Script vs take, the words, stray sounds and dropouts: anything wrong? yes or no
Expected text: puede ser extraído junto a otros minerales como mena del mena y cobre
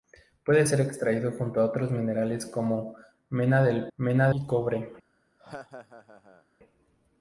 yes